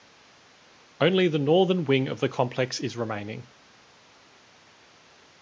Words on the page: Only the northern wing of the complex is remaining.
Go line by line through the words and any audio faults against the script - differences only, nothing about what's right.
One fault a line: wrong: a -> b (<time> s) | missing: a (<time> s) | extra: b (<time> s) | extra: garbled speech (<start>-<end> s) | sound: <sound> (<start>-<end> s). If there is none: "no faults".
no faults